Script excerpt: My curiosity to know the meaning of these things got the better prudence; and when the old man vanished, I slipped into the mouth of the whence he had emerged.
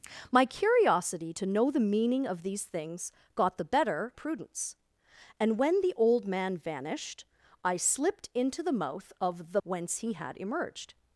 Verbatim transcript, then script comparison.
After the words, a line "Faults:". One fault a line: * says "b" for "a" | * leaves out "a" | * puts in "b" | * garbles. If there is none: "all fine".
My curiosity to know the meaning of these things got the better prudence; and when the old man vanished, I slipped into the mouth of the whence he had emerged.
Faults:
all fine